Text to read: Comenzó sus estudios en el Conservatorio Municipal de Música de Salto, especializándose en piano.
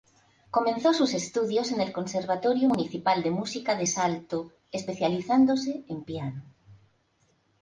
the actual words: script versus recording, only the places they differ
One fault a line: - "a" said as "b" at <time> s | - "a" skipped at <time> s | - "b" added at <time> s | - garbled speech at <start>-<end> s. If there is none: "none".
none